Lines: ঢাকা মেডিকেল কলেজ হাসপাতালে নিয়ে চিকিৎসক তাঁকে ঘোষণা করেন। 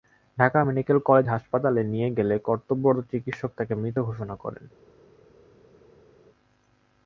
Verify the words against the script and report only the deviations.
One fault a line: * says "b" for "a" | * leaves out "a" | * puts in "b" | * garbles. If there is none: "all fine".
* puts in "গেলে কর্তব্যরত"
* puts in "মৃত"